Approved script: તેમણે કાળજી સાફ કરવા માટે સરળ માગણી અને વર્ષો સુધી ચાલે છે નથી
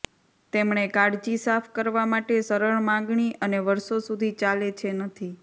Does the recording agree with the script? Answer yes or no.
yes